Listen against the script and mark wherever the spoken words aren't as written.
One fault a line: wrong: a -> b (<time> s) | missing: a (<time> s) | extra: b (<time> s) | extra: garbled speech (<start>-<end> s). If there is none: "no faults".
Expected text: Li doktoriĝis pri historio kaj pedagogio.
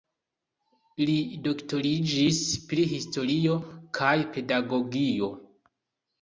no faults